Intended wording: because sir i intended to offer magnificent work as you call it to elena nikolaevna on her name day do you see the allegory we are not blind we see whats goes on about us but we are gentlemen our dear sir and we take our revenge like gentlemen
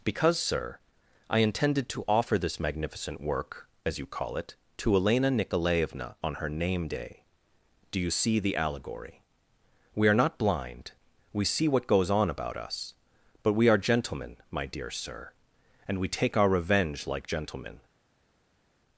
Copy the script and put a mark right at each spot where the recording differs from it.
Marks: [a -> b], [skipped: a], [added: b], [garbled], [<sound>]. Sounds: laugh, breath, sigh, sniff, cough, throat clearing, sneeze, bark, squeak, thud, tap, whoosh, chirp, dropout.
because sir i intended to offer [added: this] magnificent work as you call it to elena nikolaevna on her name day do you see the allegory we are not blind we see [whats -> what] goes on about us but we are gentlemen [our -> my] dear sir and we take our revenge like gentlemen